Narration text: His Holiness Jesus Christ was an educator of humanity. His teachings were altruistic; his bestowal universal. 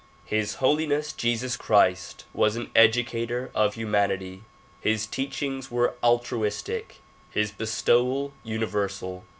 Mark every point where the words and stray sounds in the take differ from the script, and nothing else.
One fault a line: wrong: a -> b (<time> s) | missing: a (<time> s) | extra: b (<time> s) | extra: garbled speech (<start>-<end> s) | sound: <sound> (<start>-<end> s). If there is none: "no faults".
no faults